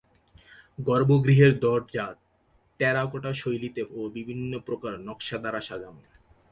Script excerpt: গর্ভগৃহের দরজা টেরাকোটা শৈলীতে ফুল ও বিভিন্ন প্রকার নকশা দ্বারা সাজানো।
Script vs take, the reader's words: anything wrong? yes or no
yes